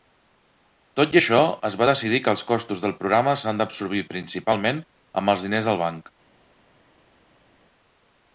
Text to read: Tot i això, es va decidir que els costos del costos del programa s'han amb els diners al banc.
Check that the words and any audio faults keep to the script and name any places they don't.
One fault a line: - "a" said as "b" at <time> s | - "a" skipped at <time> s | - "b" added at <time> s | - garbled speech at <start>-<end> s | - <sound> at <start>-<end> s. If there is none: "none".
- "costos del programa s'han" said as "programa s'han d'absorbir principalment" at 3.0 s